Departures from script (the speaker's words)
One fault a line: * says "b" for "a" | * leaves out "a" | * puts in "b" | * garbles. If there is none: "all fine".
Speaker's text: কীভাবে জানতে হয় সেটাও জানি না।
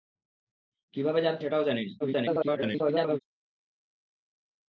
* leaves out "হয়"
* garbles